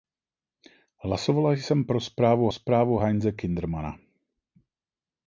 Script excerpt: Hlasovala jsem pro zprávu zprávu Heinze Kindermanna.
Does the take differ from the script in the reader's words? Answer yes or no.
no